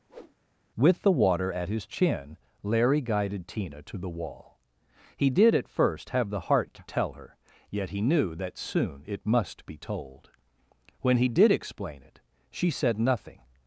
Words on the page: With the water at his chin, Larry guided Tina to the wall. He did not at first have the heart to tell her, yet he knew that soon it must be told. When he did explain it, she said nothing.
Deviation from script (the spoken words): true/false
true